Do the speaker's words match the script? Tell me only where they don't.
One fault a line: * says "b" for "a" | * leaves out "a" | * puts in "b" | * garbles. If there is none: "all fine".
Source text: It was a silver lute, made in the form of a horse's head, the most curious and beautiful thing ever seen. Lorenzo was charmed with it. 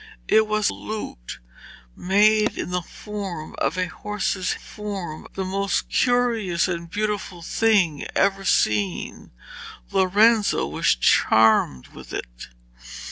* leaves out "a silver"
* says "form" for "head"